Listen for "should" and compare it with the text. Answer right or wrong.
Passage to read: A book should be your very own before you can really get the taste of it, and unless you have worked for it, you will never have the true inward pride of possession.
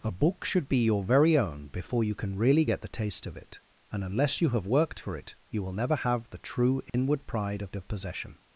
right